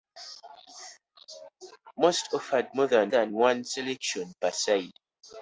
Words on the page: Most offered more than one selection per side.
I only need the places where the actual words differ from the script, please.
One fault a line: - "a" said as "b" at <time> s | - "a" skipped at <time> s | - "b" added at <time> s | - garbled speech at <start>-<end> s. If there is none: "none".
- "than" added at 3.1 s